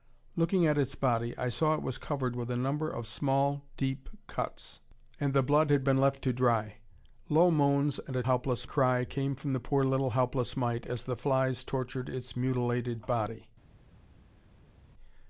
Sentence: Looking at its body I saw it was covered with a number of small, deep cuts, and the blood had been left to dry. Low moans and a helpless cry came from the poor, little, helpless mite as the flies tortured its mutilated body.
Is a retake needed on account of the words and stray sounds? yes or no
no